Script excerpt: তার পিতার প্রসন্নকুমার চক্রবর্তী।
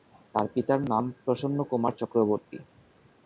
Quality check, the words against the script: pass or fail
fail